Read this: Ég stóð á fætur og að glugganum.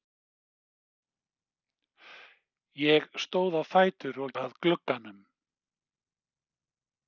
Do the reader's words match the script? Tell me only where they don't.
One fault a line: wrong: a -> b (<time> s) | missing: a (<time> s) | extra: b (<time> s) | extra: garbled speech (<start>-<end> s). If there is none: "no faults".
no faults